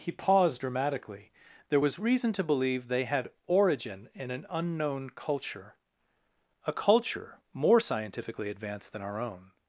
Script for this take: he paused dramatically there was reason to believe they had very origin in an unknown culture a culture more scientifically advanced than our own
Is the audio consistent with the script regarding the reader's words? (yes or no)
no